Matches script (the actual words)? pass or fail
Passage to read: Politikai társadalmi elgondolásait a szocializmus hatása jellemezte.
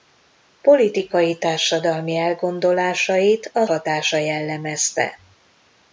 fail